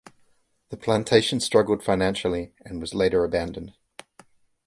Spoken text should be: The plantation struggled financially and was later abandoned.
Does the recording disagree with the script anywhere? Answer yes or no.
no